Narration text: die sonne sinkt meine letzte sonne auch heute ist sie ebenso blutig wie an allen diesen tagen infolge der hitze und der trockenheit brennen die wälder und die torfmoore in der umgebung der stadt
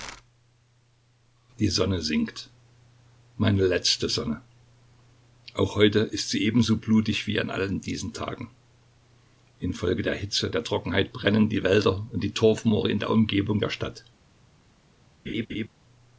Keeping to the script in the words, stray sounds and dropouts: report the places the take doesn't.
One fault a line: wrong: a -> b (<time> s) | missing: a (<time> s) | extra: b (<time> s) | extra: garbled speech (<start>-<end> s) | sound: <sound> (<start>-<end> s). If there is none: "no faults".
missing: und (10.5 s)
sound: laugh (15.3-15.7 s)